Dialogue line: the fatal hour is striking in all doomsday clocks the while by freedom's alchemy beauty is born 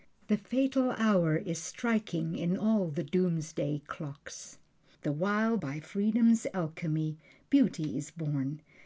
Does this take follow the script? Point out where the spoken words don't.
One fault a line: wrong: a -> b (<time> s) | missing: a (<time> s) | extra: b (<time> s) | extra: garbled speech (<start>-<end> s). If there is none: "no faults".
extra: the (2.9 s)